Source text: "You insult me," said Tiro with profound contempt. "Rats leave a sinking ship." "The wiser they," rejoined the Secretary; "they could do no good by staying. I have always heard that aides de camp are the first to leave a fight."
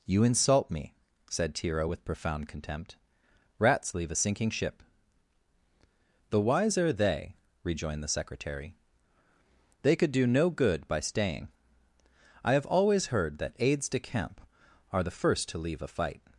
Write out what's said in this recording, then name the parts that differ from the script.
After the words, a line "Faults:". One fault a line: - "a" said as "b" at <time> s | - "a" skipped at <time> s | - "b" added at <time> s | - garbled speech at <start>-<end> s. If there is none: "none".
"You insult me," said Tiro with profound contempt. "Rats leave a sinking ship." "The wiser they," rejoined the Secretary; "they could do no good by staying. I have always heard that aides de camp are the first to leave a fight."
Faults:
none